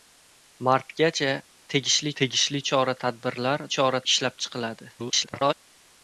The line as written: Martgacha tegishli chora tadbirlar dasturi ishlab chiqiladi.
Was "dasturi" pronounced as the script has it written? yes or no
no